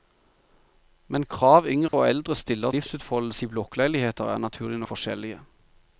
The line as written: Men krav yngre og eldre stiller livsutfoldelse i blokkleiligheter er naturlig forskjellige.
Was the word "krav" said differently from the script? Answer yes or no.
no